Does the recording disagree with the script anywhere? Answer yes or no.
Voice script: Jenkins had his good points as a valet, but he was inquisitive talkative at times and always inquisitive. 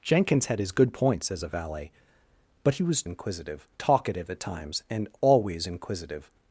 no